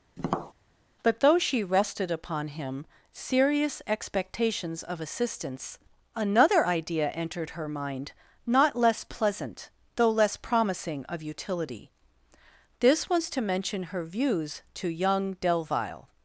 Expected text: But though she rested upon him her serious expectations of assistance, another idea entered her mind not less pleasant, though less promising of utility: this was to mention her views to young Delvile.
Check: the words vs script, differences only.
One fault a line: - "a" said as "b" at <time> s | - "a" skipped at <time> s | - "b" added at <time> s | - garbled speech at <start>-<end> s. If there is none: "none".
- "her" skipped at 2.9 s